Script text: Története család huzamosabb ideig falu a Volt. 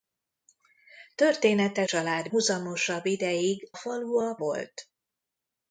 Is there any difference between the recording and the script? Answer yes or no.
no